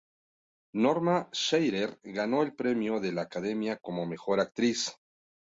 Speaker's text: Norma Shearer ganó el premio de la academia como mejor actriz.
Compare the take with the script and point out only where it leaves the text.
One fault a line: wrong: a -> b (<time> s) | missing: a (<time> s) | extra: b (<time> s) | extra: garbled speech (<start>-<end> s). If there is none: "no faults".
no faults